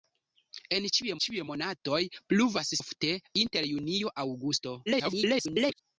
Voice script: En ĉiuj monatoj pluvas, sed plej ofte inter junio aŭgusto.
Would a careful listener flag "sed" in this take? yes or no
yes